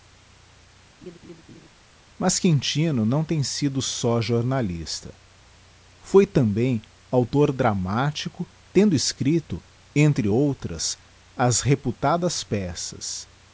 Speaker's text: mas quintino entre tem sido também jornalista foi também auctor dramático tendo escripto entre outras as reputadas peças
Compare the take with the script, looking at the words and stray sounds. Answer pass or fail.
fail